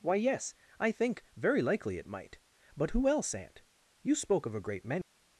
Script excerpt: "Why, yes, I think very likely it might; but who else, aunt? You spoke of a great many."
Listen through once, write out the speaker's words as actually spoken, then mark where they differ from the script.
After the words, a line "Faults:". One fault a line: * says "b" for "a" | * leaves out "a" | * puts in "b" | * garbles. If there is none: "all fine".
"Why, yes, I think very likely it might; but who else, aunt? You spoke of a great many."
Faults:
all fine